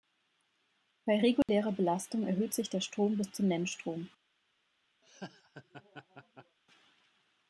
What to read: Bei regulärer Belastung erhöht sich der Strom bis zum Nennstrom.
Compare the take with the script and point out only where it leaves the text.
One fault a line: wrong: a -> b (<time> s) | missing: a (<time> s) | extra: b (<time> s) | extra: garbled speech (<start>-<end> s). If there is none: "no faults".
no faults